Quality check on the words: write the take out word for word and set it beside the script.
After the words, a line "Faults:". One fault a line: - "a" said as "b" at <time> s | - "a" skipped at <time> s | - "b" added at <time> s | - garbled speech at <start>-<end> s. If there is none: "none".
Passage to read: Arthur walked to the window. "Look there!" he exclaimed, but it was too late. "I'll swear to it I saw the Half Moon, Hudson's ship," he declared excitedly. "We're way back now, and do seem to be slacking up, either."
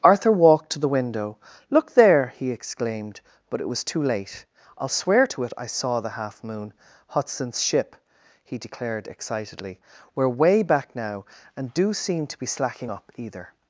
Arthur walked to the window. "Look there!" he exclaimed, but it was too late. "I'll swear to it I saw the Half Moon, Hudson's ship," he declared excitedly. "We're way back now, and do seem to be slacking up, either."
Faults:
none